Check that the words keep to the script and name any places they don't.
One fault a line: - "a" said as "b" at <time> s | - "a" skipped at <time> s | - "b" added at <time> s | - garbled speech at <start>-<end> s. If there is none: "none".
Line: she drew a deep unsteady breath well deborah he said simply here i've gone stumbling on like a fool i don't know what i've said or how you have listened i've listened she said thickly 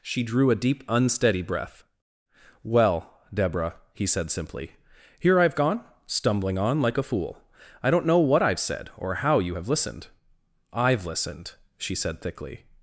none